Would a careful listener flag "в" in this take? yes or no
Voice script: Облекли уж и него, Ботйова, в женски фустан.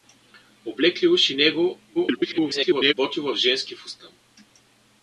no